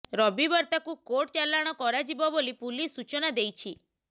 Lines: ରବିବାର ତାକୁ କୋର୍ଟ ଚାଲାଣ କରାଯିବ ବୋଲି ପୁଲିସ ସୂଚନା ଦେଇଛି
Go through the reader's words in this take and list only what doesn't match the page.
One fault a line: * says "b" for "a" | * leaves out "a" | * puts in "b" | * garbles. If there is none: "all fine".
all fine